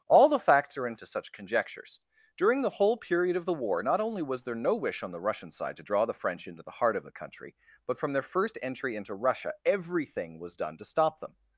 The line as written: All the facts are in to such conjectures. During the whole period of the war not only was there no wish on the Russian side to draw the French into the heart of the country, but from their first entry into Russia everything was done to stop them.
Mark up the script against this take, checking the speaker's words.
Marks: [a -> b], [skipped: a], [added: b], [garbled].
All the facts are in to such conjectures. During the whole period of the war not only was there no wish on the Russian side to draw the French into the heart of the country, but from their first entry into Russia everything was done to stop them.